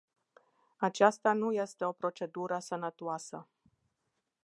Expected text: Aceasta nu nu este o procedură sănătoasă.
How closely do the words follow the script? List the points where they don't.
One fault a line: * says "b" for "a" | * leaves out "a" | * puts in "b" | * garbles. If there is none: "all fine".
* leaves out "nu"